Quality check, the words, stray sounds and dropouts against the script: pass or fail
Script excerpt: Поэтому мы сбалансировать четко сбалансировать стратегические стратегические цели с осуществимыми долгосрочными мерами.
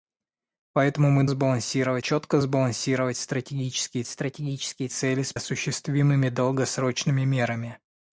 pass